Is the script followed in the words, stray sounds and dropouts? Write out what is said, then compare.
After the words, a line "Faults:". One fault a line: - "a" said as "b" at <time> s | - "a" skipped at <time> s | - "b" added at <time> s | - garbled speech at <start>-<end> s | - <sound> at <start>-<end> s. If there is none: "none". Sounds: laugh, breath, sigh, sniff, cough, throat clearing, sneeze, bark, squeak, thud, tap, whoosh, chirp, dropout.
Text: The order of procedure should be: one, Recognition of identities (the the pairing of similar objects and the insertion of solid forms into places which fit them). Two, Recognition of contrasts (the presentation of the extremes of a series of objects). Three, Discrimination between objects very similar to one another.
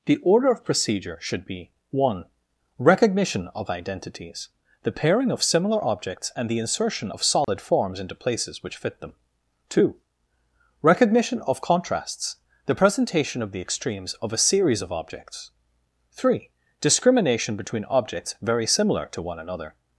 The order of procedure should be: one, Recognition of identities (the pairing of similar objects and the insertion of solid forms into places which fit them). Two, Recognition of contrasts (the presentation of the extremes of a series of objects). Three, Discrimination between objects very similar to one another.
Faults:
- "the" skipped at 4.9 s
- dropout at 7.4-7.5 s